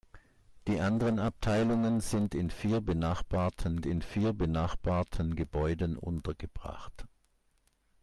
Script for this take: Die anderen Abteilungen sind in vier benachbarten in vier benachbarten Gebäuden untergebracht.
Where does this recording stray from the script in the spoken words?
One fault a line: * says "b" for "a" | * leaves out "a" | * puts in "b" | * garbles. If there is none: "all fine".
all fine